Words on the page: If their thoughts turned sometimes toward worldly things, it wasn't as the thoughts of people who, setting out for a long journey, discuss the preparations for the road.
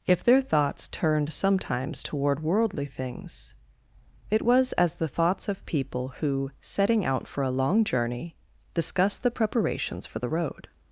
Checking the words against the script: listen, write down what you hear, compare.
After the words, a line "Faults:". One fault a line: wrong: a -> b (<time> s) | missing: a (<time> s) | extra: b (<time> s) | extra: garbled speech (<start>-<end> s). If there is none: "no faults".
If their thoughts turned sometimes toward worldly things, it was as the thoughts of people who, setting out for a long journey, discuss the preparations for the road.
Faults:
wrong: wasn't -> was (4.4 s)